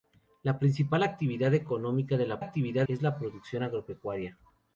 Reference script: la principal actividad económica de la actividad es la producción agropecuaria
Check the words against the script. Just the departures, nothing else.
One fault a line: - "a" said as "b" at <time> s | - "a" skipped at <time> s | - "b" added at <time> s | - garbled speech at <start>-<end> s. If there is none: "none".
none